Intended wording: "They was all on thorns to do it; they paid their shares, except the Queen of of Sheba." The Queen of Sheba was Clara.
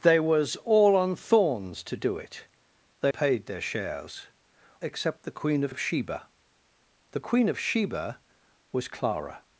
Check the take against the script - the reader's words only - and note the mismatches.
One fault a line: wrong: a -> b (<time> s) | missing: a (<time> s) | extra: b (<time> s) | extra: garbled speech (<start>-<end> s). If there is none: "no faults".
no faults